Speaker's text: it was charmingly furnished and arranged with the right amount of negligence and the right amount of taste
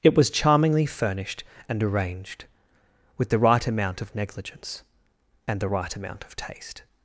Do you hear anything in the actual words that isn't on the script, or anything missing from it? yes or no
no